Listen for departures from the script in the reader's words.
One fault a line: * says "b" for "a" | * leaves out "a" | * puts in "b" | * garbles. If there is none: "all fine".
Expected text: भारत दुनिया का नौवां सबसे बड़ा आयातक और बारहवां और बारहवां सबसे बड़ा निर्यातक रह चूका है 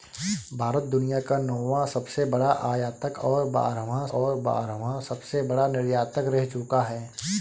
all fine